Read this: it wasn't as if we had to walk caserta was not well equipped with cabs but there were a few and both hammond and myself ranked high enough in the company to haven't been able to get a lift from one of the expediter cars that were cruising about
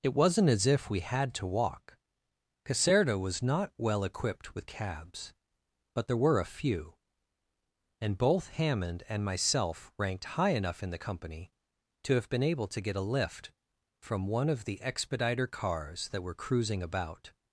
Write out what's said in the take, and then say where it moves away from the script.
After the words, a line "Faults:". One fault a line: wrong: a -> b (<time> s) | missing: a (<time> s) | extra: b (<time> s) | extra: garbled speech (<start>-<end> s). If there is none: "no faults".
it wasn't as if we had to walk caserta was not well equipped with cabs but there were a few and both hammond and myself ranked high enough in the company to have been able to get a lift from one of the expediter cars that were cruising about
Faults:
wrong: haven't -> have (12.1 s)